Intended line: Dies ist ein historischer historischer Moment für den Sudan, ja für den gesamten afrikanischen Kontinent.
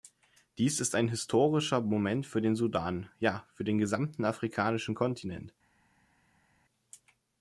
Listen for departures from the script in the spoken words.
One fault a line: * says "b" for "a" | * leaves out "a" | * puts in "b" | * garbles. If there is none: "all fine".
* leaves out "historischer"